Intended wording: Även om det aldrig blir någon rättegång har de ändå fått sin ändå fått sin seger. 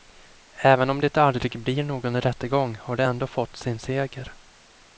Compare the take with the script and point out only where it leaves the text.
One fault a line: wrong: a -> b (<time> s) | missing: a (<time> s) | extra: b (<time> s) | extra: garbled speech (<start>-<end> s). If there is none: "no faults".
missing: ändå fått sin (3.8 s)